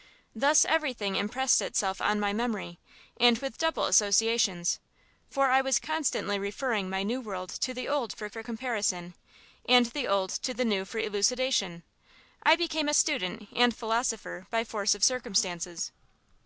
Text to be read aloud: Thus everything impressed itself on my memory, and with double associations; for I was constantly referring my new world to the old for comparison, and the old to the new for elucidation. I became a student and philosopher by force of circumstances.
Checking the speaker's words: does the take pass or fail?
fail